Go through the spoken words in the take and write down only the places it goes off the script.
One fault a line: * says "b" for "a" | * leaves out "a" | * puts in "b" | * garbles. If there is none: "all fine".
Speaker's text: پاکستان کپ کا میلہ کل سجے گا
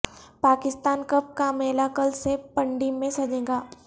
* puts in "سے پنڈی میں"